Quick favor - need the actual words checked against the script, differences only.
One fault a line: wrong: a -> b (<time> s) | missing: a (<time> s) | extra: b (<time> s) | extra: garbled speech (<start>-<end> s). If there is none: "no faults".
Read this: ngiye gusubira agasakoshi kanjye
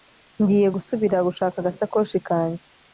extra: gushaka (1.3 s)